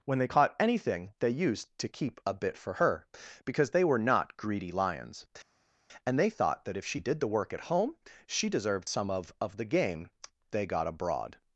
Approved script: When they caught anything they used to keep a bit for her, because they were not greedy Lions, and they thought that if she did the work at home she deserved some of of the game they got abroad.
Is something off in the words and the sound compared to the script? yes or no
no